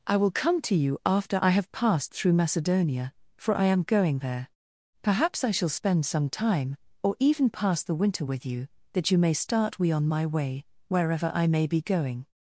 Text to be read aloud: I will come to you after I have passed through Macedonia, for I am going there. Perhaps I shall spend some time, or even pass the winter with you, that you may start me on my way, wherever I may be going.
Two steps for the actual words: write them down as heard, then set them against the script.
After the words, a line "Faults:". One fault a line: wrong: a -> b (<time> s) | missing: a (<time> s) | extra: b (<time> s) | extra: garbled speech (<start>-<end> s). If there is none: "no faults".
I will come to you after I have passed through Macedonia, for I am going there. Perhaps I shall spend some time, or even pass the winter with you, that you may start we on my way, wherever I may be going.
Faults:
wrong: me -> we (9.8 s)